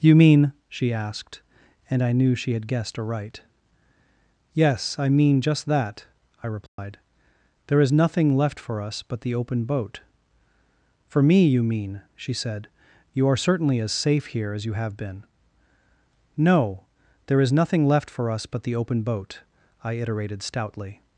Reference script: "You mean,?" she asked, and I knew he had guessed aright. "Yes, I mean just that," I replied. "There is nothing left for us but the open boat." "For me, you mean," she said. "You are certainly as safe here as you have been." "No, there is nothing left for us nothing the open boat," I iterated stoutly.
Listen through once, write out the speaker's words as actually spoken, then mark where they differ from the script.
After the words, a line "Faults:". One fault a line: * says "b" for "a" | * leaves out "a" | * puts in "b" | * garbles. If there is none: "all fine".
"You mean,?" she asked, and I knew she had guessed aright. "Yes, I mean just that," I replied. "There is nothing left for us but the open boat." "For me, you mean," she said. "You are certainly as safe here as you have been." "No, there is nothing left for us but the open boat," I iterated stoutly.
Faults:
* says "she" for "he"
* says "but" for "nothing"